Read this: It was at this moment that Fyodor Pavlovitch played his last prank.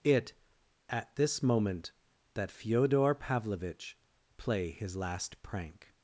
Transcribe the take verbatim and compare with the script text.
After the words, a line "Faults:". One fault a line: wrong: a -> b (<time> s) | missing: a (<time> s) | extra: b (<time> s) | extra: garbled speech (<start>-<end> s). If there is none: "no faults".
It at this moment that Fyodor Pavlovitch play his last prank.
Faults:
missing: was (0.3 s)
wrong: played -> play (4.4 s)